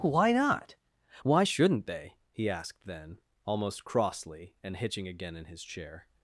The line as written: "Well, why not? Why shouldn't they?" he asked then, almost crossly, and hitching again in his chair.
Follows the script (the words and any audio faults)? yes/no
no